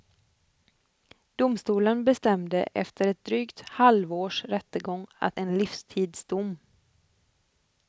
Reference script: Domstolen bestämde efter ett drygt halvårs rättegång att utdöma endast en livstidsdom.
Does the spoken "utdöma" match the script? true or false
false